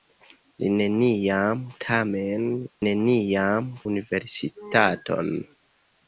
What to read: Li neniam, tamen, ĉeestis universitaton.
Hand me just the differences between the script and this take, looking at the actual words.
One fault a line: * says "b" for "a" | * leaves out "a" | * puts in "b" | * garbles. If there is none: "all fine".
* says "neniam" for "ĉeestis"